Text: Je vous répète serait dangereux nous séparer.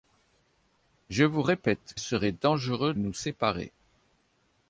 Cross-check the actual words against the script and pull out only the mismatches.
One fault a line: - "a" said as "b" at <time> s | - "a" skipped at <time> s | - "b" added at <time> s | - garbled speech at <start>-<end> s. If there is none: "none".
none